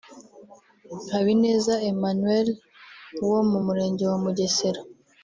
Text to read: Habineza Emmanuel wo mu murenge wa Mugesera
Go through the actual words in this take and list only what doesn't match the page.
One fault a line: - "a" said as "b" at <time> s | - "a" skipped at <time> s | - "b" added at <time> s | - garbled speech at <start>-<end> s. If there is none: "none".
none